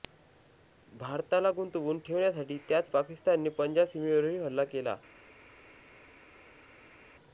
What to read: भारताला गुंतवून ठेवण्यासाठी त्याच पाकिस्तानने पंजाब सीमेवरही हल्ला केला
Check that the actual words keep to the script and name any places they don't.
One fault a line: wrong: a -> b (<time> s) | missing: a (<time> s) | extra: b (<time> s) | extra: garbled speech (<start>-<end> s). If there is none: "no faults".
no faults